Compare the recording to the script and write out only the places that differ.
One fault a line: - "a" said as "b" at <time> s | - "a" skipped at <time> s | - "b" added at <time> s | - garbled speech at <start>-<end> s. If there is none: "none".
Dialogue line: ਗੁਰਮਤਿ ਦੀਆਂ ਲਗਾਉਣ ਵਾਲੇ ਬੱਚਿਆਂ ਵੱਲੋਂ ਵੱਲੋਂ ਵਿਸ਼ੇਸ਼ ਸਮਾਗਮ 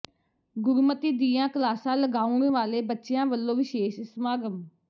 - "ਕਲਾਸਾਂ" added at 1.5 s
- "ਵੱਲੋਂ" skipped at 3.6 s